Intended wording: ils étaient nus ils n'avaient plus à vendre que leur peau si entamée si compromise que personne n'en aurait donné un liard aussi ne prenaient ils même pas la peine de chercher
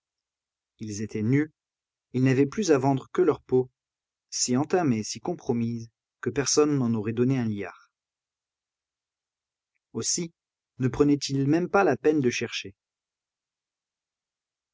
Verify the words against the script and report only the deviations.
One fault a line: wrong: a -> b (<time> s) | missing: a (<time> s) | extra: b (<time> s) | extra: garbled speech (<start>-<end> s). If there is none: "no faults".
no faults